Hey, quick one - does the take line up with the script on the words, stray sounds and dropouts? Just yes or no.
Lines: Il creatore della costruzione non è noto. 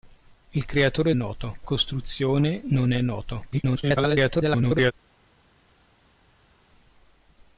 no